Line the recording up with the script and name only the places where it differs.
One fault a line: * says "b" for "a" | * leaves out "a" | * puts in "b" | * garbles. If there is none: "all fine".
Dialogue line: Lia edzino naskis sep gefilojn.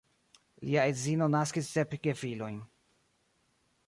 all fine